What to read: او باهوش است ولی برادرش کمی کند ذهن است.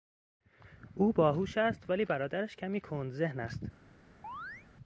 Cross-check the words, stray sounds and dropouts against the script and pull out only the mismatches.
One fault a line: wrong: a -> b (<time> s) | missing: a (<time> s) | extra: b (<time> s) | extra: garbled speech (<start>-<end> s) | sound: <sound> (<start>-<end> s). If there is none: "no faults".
sound: chirp (4.2-4.7 s)